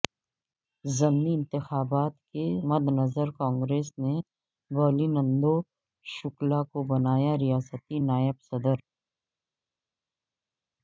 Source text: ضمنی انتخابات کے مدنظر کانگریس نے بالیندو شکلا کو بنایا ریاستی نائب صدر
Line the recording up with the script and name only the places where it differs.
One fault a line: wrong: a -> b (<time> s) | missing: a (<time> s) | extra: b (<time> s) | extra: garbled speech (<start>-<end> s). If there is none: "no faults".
no faults